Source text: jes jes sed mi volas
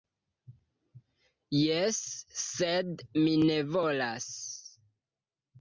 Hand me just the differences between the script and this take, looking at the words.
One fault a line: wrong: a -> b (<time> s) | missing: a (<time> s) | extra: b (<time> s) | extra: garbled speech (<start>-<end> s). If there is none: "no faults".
missing: jes (2.0 s)
extra: ne (3.5 s)